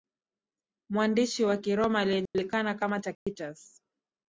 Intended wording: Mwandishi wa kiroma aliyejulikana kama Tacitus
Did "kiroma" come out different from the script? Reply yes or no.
no